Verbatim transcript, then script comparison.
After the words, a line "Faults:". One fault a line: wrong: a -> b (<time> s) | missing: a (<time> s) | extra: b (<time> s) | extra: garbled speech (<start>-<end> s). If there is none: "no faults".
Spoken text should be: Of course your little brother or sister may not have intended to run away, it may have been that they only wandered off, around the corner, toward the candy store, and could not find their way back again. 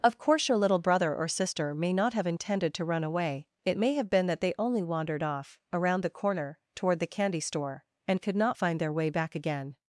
Of course your little brother or sister may not have intended to run away, it may have been that they only wandered off, around the corner, toward the candy store, and could not find their way back again.
Faults:
no faults